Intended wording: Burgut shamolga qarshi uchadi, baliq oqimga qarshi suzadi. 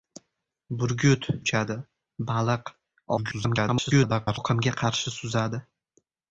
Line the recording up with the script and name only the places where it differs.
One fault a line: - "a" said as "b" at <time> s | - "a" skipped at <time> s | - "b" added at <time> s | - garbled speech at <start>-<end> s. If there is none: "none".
- "shamolga qarshi" skipped at 1.3 s
- garbled speech at 3.2-4.4 s